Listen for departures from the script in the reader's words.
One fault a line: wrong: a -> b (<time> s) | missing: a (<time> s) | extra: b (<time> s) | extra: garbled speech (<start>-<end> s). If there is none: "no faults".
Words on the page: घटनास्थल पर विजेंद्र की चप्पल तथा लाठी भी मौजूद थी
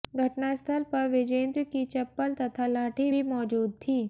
no faults